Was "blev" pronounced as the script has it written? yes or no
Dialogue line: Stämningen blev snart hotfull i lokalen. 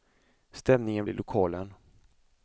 no